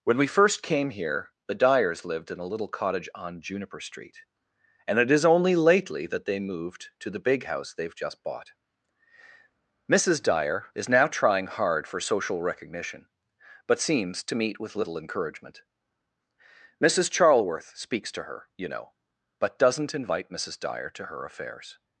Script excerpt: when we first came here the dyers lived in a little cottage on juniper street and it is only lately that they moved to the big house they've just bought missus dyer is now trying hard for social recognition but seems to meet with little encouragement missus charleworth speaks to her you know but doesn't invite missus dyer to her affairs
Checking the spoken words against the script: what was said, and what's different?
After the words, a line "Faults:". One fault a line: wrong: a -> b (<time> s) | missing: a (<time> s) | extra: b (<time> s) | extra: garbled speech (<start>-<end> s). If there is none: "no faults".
when we first came here the dyers lived in a little cottage on juniper street and it is only lately that they moved to the big house they've just bought missus dyer is now trying hard for social recognition but seems to meet with little encouragement missus charleworth speaks to her you know but doesn't invite missus dyer to her affairs
Faults:
no faults